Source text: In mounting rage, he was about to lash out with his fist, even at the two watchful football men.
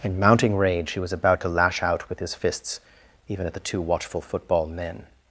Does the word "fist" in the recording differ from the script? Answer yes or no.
yes